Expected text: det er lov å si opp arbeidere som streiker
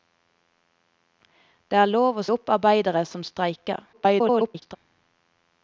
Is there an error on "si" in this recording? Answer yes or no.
yes